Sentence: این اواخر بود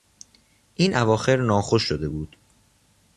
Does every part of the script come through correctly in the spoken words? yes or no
no